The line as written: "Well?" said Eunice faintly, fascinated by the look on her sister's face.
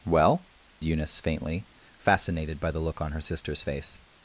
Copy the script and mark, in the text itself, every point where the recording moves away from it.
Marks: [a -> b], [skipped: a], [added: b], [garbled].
"Well?" [skipped: said] Eunice faintly, fascinated by the look on her sister's face.